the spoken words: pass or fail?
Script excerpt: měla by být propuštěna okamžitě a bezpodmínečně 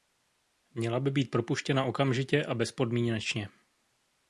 pass